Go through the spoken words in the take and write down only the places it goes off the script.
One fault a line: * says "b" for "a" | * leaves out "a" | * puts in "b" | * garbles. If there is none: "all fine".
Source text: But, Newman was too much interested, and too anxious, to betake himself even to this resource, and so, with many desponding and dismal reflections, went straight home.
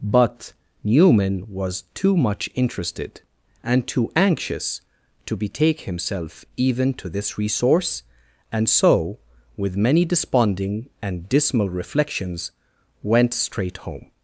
all fine